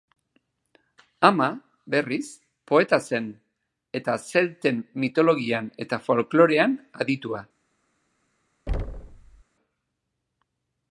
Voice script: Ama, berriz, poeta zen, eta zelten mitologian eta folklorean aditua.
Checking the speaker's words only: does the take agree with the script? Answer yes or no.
yes